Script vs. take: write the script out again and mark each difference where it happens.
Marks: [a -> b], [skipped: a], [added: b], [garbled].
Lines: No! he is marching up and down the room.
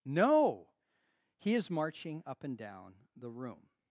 No! he is marching up and down the room.